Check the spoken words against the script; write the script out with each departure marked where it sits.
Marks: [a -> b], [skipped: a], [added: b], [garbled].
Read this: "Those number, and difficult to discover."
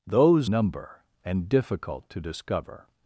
"Those number, and difficult to discover."